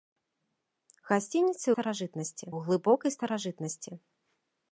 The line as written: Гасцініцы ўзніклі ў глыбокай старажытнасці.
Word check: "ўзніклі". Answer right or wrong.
wrong